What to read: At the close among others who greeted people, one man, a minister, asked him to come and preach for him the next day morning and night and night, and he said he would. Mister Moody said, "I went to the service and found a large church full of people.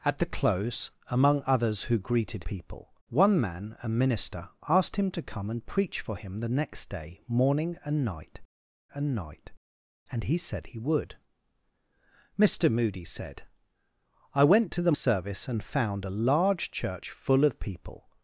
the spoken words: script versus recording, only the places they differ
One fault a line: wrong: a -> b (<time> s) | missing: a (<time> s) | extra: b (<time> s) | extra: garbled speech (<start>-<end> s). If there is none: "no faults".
no faults